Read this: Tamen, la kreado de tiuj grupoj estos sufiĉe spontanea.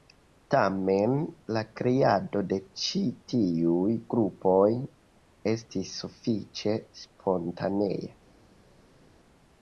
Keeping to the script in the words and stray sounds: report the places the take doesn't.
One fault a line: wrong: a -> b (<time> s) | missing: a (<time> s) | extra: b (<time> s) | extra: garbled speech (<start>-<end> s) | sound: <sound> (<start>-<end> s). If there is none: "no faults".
extra: ĉi (2.9 s)
wrong: estos -> estis (5.5 s)